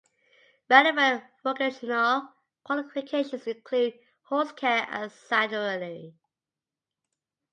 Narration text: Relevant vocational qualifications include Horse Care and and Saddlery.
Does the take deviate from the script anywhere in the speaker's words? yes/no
yes